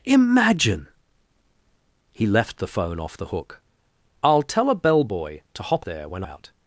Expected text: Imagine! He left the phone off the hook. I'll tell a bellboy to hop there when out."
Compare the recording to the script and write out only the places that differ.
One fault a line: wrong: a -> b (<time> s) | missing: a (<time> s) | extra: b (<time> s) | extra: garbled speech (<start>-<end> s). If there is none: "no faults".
no faults